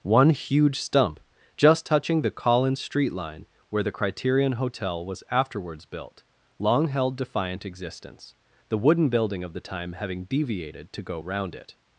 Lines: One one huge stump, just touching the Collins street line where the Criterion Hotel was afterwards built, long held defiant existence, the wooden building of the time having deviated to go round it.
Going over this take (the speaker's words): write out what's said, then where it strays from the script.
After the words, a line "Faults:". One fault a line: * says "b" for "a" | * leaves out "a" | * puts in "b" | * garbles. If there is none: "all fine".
One huge stump, just touching the Collins street line where the Criterion Hotel was afterwards built, long held defiant existence, the wooden building of the time having deviated to go round it.
Faults:
* leaves out "one"